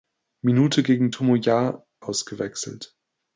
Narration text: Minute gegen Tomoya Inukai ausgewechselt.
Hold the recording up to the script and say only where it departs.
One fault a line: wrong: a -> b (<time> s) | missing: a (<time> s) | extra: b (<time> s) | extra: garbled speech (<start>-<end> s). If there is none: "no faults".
missing: Inukai (1.8 s)